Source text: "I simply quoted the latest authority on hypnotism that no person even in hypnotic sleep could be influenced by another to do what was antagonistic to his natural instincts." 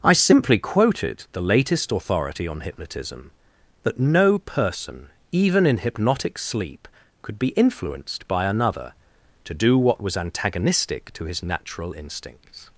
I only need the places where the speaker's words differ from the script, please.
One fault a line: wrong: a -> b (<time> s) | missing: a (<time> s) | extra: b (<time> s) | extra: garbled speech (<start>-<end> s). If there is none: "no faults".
no faults